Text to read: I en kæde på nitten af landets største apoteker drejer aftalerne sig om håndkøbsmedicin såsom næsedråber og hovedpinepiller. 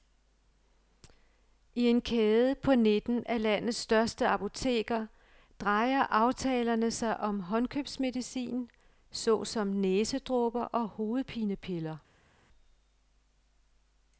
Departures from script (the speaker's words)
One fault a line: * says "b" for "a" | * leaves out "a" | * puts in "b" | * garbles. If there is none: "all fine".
all fine